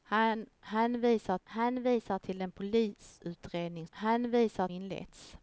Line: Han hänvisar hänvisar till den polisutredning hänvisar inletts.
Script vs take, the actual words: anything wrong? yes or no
no